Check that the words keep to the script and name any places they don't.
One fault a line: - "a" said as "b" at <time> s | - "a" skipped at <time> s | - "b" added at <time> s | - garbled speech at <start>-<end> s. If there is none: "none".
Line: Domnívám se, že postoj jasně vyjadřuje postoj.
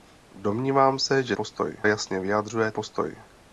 none